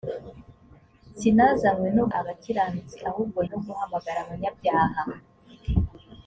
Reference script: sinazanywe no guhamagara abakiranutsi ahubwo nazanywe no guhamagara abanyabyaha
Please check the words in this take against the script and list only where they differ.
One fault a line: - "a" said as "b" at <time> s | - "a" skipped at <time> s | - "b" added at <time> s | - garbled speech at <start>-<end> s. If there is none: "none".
- "guhamagara" skipped at 2.0 s
- "nazanywe" skipped at 3.4 s